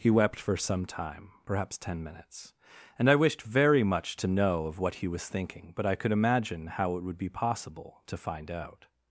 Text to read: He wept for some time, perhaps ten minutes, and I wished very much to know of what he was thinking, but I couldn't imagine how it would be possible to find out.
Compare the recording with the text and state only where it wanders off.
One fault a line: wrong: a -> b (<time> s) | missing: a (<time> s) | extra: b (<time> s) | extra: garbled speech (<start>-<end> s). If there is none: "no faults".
wrong: couldn't -> could (5.9 s)